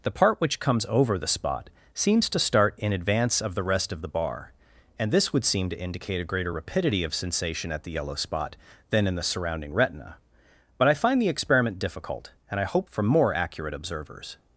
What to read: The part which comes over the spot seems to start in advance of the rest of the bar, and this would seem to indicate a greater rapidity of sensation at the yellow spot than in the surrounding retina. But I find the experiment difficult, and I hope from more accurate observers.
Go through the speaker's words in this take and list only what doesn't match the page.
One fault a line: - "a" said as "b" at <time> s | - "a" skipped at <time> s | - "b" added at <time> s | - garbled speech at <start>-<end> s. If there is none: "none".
none